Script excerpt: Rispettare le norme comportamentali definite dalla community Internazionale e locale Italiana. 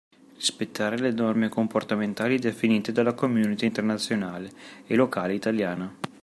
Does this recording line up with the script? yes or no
yes